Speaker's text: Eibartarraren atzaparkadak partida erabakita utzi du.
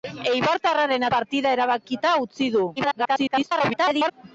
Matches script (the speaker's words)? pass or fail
fail